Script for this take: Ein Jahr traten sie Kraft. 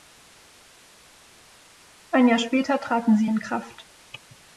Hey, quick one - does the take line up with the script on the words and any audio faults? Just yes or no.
no